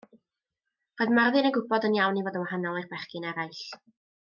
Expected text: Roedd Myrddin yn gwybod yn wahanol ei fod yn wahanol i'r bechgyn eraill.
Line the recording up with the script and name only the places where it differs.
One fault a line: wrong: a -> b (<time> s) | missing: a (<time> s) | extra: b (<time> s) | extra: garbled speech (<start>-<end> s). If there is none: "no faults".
wrong: wahanol -> iawn (2.0 s)